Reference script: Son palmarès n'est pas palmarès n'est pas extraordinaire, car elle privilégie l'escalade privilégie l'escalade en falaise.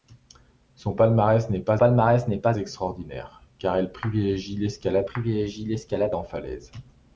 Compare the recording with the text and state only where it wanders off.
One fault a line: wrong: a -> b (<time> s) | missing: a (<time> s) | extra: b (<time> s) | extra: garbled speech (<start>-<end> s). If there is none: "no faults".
no faults